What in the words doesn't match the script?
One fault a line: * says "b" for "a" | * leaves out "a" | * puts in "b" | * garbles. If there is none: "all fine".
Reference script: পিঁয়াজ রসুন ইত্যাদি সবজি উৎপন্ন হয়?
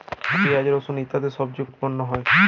all fine